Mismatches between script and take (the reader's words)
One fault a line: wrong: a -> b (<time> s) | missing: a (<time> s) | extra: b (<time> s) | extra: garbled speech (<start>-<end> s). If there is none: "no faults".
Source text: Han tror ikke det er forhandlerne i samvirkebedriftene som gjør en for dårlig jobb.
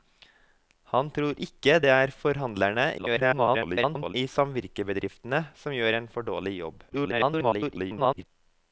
extra: garbled speech (3.0-4.1 s)
extra: garbled speech (6.9-8.3 s)